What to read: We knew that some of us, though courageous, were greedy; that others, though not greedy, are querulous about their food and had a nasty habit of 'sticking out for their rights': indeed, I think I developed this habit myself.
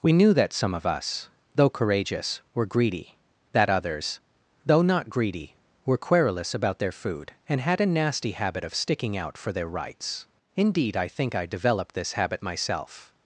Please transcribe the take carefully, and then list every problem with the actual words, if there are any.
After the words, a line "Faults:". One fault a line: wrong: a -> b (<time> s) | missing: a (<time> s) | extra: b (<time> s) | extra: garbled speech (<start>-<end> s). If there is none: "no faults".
We knew that some of us, though courageous, were greedy; that others, though not greedy, were querulous about their food and had a nasty habit of 'sticking out for their rights': indeed, I think I developed this habit myself.
Faults:
wrong: are -> were (5.8 s)